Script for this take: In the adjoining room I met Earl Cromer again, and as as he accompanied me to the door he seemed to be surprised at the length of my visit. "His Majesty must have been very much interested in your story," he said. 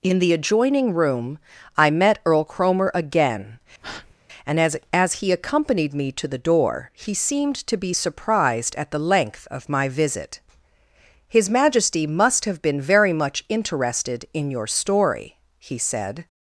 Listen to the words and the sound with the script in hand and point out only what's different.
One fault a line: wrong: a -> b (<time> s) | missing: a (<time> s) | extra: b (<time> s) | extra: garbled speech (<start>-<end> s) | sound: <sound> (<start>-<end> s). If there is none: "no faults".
sound: breath (3.8-4.1 s)